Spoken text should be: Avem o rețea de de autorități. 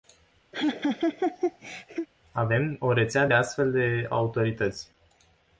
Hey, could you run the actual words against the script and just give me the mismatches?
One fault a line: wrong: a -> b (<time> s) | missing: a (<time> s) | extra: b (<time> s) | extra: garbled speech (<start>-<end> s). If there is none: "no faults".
extra: astfel (3.3 s)